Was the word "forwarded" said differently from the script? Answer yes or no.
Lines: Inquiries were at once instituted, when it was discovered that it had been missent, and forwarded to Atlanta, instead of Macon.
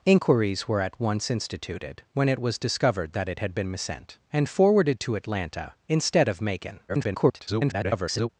no